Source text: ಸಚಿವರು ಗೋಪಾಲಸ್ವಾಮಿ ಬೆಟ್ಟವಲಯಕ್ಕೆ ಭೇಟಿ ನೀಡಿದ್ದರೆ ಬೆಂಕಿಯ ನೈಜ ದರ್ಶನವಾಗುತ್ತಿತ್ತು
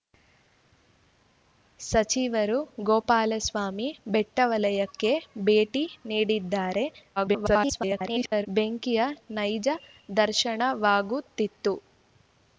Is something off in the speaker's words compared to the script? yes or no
yes